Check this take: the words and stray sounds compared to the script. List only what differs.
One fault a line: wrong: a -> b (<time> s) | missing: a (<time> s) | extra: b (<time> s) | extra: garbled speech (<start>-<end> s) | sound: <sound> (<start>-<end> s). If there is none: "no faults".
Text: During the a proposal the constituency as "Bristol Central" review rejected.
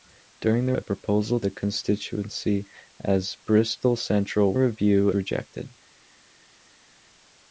no faults